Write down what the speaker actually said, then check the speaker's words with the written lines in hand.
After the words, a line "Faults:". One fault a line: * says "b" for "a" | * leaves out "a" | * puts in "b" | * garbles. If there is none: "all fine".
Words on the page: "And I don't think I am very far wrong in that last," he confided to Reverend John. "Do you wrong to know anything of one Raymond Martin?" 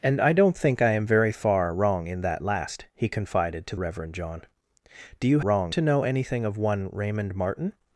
"And I don't think I am very far wrong in that last," he confided to Reverend John. "Do you wrong to know anything of one Raymond Martin?"
Faults:
all fine